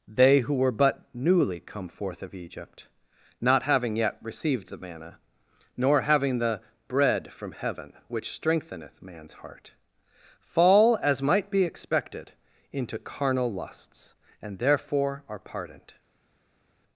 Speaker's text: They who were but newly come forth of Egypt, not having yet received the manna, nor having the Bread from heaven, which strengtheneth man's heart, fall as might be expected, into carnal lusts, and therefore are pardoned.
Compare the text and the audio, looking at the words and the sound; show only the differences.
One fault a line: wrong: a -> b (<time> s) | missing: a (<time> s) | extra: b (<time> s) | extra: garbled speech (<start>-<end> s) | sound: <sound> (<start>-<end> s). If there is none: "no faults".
no faults